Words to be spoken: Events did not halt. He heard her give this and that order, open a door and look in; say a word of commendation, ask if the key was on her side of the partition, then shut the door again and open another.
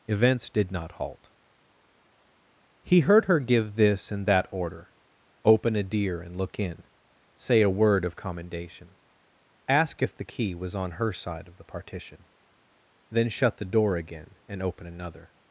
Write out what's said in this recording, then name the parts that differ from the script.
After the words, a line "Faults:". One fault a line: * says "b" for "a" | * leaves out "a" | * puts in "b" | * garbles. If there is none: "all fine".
Events did not halt. He heard her give this and that order, open a deer and look in; say a word of commendation, ask if the key was on her side of the partition, then shut the door again and open another.
Faults:
* says "deer" for "door"